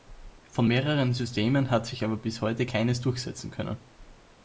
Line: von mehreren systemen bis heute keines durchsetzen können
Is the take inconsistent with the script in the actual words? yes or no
yes